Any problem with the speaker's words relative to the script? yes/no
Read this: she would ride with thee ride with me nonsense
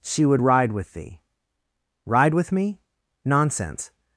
no